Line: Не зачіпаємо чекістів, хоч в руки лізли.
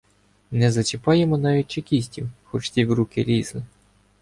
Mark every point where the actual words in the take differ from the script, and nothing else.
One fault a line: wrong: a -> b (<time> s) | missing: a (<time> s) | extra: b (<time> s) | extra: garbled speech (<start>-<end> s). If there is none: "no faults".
extra: навіть (1.4 s)
extra: ті (2.7 s)